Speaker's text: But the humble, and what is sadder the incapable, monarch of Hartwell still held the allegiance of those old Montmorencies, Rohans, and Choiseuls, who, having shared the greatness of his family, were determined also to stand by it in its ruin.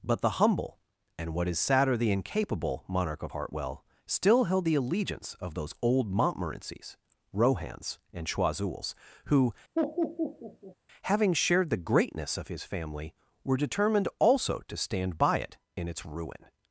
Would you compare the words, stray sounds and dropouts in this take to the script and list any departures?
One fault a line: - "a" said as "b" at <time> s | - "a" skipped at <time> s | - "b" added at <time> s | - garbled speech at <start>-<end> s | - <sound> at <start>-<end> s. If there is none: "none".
- laugh at 9.8-10.8 s